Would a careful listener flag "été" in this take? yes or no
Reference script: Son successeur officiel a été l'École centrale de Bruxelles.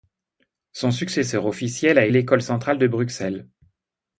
yes